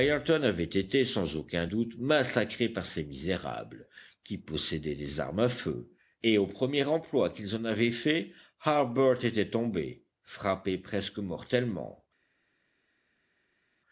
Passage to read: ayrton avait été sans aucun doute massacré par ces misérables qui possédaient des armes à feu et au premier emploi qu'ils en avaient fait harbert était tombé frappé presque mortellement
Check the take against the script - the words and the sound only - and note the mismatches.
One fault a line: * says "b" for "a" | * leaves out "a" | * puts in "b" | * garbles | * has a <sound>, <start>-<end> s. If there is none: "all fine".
all fine